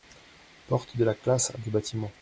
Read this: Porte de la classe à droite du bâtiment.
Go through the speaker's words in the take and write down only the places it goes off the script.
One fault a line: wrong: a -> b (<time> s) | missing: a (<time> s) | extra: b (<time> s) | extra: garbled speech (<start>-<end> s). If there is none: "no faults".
missing: droite (1.6 s)